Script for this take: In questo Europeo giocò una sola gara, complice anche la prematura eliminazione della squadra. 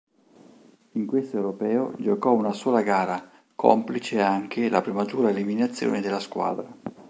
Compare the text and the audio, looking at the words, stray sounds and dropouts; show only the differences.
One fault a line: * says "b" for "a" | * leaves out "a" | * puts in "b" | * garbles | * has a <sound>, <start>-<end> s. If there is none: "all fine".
all fine